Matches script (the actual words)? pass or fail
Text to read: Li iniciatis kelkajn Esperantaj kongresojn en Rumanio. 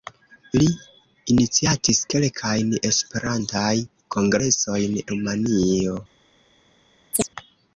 fail